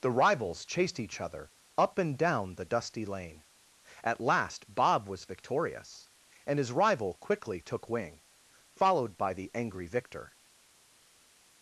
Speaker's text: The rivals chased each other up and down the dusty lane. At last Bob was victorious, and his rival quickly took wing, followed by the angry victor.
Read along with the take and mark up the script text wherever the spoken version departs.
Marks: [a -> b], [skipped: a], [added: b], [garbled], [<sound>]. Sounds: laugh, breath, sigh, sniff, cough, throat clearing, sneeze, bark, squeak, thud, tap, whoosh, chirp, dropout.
The rivals chased each other up and down the dusty lane. At last Bob was victorious, and his rival quickly took wing, followed by the angry victor.